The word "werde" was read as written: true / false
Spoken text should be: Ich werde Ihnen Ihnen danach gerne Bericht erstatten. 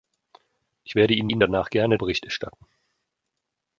true